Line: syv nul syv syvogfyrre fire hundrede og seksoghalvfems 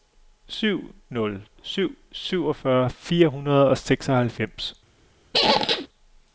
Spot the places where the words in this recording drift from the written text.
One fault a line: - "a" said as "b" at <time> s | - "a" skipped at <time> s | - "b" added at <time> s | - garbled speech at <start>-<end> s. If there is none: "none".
none